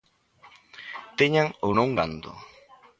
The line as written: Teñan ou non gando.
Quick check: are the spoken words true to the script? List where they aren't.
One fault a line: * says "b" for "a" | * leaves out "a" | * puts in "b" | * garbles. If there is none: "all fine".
all fine